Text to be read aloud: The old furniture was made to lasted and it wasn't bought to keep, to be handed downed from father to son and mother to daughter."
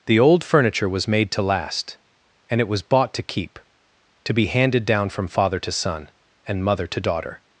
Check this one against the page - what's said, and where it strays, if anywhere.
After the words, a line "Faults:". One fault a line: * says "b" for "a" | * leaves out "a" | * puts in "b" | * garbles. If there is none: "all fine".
The old furniture was made to last and it was bought to keep, to be handed down from father to son and mother to daughter."
Faults:
* says "last" for "lasted"
* says "was" for "wasn't"
* says "down" for "downed"